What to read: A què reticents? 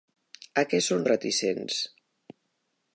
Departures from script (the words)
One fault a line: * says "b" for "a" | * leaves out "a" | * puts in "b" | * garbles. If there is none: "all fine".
* puts in "són"